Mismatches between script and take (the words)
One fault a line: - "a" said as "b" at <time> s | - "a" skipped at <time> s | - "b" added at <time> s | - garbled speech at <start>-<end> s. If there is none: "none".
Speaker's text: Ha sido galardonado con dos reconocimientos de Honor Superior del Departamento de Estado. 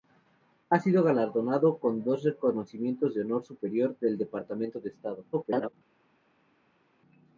- garbled speech at 5.3-5.7 s